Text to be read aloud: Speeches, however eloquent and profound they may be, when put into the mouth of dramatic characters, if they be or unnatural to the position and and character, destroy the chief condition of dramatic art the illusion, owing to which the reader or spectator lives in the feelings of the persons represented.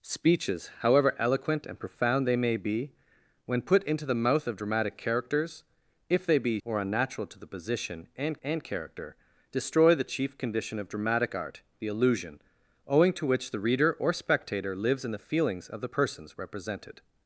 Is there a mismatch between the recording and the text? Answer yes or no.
no